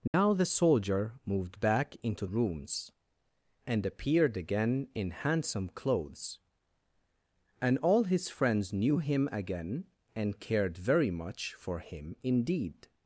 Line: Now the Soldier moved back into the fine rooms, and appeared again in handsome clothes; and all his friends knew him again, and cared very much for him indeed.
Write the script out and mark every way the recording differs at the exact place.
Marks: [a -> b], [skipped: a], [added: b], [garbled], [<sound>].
Now [dropout] the Soldier moved back into [skipped: the fine] rooms, and appeared again in handsome clothes; and all his friends knew him again, and cared very much for him indeed.